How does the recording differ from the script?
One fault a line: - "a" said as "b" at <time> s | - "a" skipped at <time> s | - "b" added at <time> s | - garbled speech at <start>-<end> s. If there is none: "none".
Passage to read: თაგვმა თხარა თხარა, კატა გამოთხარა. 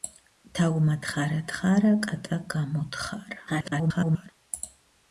- garbled speech at 3.5-4.3 s